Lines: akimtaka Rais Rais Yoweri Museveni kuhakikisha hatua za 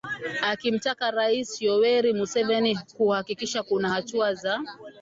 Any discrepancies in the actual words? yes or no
yes